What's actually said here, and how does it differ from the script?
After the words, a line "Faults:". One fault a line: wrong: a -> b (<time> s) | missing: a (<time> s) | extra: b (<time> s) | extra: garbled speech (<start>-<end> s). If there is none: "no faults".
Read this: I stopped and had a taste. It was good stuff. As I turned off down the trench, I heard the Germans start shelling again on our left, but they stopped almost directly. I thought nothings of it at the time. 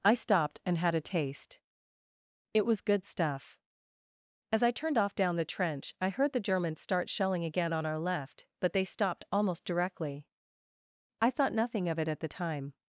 I stopped and had a taste. It was good stuff. As I turned off down the trench, I heard the Germans start shelling again on our left, but they stopped almost directly. I thought nothing of it at the time.
Faults:
wrong: nothings -> nothing (11.5 s)